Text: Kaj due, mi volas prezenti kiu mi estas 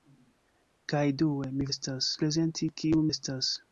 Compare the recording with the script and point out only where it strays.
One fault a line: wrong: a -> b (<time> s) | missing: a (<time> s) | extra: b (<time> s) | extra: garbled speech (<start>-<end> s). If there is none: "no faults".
wrong: volas -> estas (1.7 s)
missing: mi (3.0 s)